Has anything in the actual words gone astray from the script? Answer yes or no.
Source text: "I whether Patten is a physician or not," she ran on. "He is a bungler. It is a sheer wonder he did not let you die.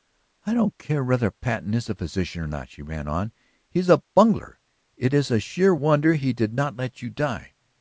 yes